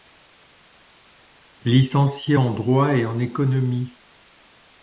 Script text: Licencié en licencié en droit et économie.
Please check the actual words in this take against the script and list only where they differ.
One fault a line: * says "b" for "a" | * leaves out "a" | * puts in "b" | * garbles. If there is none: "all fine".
* leaves out "licencié en"
* puts in "en"